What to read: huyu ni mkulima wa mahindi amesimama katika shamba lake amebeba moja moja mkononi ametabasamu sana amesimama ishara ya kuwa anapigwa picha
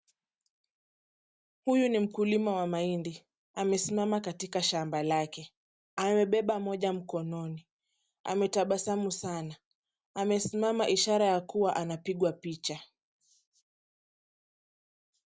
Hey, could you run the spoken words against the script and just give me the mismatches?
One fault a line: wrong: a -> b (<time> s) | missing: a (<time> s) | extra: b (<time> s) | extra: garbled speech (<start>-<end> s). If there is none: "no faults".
missing: moja (6.9 s)